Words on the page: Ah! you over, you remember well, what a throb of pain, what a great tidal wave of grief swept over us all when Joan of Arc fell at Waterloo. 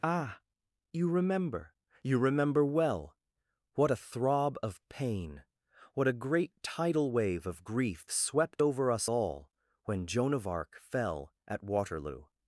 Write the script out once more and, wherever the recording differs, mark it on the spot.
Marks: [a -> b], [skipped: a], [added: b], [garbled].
Ah! you [over, -> remember] you remember well, what a throb of pain, what a great tidal wave of grief swept over us all when Joan of Arc fell at Waterloo.